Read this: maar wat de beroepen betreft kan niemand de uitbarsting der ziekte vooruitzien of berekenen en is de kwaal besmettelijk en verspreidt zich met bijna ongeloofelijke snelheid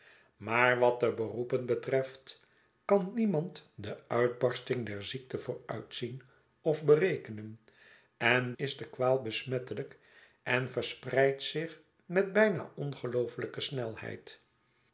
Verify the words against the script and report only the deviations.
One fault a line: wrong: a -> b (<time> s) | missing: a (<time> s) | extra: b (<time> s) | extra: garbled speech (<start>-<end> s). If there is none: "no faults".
no faults